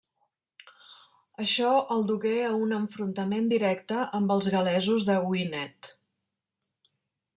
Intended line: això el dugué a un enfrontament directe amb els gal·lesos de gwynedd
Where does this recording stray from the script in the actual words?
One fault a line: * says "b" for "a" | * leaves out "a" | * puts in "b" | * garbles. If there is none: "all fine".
all fine